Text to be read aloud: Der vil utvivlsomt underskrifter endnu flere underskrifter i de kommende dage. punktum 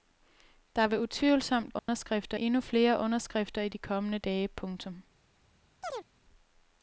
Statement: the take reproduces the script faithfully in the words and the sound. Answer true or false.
false